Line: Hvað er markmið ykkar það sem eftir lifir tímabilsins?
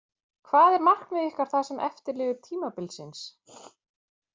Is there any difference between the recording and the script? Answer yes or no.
no